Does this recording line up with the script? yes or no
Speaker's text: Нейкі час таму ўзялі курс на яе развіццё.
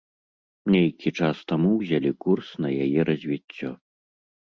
yes